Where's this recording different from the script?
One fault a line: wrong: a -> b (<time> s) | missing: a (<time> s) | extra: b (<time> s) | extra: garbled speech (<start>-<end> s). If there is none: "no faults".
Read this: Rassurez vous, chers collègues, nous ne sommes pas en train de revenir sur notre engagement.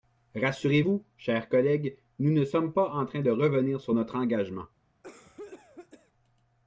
no faults